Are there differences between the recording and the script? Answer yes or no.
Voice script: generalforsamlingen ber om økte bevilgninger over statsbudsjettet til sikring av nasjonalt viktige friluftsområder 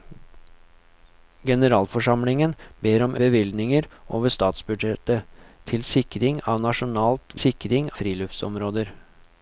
yes